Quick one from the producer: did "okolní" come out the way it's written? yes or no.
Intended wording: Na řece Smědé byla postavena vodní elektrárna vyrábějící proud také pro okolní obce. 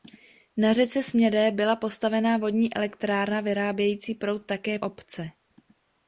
no